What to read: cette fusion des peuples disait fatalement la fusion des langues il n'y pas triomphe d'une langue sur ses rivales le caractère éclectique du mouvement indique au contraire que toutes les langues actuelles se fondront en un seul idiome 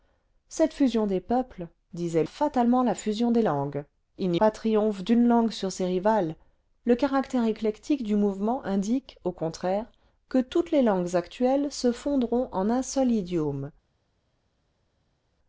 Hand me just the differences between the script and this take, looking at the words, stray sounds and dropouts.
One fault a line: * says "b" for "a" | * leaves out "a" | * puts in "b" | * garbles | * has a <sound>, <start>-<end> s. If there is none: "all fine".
all fine